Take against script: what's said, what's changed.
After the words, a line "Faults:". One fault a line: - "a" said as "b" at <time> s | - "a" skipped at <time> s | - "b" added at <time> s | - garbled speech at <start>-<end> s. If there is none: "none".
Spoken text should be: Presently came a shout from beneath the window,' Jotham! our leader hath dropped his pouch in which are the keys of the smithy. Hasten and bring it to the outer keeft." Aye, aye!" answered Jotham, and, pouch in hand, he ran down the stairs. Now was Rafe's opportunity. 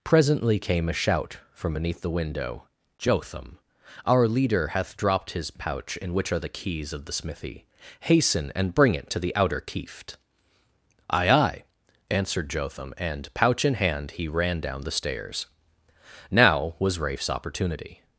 Presently came a shout from beneath the window,' Jotham! our leader hath dropped his pouch in which are the keys of the smithy. Hasten and bring it to the outer keeft." Aye, aye!" answered Jotham, and, pouch in hand, he ran down the stairs. Now was Rafe's opportunity.
Faults:
none